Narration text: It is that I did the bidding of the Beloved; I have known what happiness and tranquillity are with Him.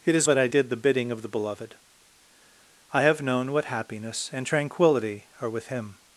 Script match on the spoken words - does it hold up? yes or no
yes